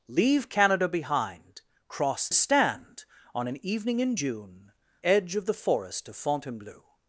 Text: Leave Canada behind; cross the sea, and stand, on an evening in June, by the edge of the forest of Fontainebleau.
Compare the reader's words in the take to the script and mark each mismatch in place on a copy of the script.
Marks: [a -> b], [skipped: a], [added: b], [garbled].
Leave Canada behind; cross [skipped: the sea, and] stand, on an evening in June, [skipped: by the] edge of the forest of Fontainebleau.